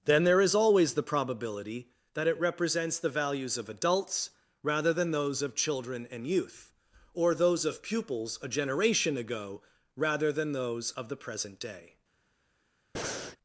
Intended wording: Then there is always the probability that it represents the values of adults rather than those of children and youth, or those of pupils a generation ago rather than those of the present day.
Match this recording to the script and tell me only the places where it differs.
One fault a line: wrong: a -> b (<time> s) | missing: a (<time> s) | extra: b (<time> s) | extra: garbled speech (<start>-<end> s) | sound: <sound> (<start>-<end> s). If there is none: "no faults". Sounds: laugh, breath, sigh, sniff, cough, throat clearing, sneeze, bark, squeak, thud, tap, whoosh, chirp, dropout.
sound: breath (12.9-13.4 s)